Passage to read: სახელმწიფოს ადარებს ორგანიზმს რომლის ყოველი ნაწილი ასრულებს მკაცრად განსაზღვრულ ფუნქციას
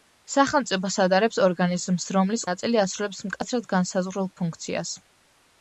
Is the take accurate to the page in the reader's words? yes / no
no